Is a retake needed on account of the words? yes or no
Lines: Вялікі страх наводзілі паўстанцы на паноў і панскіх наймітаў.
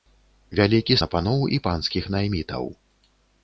yes